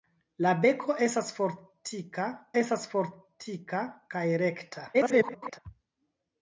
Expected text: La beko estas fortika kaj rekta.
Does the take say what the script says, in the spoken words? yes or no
no